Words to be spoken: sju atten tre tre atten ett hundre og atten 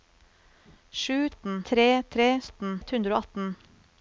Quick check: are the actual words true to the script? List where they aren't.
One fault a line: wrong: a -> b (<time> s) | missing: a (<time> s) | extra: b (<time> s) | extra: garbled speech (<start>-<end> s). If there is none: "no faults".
no faults